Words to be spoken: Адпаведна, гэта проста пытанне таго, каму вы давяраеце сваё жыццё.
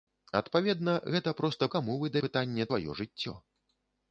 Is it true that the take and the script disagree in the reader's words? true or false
true